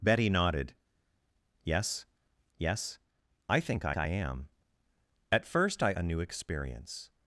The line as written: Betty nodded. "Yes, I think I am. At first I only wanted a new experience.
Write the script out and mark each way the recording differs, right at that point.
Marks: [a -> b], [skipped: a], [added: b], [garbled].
Betty nodded. "Yes, [added: yes] I think I [added: I] am. At first I [skipped: only wanted] a new experience.